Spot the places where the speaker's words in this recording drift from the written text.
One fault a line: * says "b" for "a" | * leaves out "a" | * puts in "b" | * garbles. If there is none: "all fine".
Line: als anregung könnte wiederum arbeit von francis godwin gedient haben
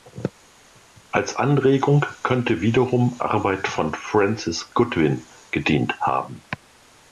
all fine